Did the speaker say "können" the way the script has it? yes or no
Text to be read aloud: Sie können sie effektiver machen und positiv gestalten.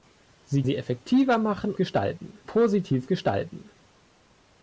no